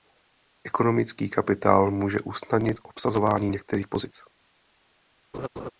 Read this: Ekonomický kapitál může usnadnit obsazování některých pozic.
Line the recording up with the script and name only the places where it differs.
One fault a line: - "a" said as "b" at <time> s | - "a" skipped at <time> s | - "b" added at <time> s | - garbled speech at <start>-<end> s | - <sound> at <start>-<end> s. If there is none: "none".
- laugh at 5.3-5.7 s